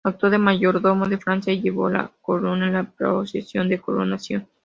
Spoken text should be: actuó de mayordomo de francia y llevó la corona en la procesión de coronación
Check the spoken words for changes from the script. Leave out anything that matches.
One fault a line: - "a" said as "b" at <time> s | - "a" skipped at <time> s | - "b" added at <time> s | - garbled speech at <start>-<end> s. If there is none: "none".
none